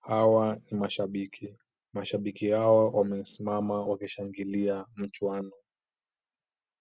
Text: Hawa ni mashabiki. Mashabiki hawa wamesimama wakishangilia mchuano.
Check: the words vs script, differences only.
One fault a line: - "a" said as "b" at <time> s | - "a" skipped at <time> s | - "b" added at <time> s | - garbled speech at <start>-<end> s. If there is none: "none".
none